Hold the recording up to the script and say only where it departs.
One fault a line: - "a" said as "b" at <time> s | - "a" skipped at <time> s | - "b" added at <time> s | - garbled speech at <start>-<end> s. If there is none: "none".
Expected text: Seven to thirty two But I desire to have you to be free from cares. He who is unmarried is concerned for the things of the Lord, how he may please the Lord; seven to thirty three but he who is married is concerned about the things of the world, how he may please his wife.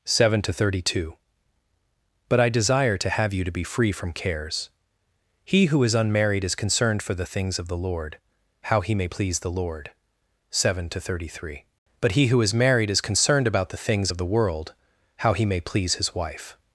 none